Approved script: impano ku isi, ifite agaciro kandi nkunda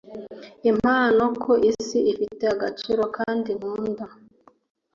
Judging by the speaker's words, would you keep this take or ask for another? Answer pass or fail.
pass